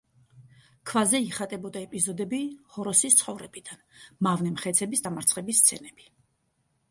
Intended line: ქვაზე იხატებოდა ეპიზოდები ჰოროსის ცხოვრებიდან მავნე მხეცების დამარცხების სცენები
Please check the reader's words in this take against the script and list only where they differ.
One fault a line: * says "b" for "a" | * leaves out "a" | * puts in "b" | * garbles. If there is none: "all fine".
all fine